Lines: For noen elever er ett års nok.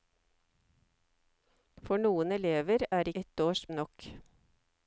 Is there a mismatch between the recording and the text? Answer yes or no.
no